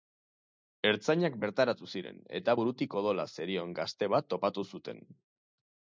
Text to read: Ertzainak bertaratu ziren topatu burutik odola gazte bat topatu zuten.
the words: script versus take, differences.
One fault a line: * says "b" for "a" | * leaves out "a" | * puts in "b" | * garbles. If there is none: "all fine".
* says "eta" for "topatu"
* puts in "zerion"